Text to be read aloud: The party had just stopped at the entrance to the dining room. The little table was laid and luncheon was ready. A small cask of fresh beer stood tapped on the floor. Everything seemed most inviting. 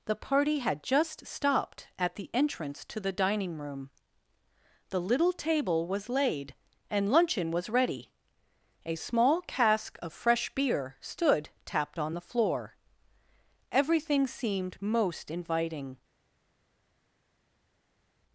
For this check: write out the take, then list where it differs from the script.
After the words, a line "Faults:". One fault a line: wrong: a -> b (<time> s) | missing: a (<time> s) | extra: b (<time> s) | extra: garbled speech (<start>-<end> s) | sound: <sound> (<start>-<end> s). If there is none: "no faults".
The party had just stopped at the entrance to the dining room. The little table was laid and luncheon was ready. A small cask of fresh beer stood tapped on the floor. Everything seemed most inviting.
Faults:
no faults